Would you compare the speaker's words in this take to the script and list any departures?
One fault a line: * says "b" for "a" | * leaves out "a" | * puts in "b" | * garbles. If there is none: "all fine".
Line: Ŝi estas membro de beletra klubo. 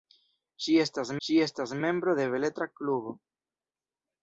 * puts in "ŝi estas"